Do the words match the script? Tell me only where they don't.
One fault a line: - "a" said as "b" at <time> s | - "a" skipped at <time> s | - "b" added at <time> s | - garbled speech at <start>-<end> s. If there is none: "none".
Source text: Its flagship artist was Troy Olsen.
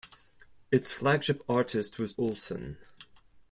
- "Troy" skipped at 2.1 s